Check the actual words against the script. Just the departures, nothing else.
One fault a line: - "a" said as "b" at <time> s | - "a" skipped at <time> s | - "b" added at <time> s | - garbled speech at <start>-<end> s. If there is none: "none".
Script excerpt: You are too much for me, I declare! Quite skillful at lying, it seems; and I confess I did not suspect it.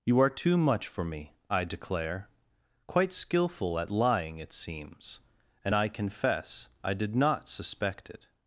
none